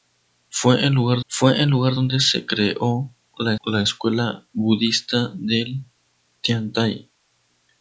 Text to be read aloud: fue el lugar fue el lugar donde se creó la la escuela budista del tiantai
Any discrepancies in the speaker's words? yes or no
no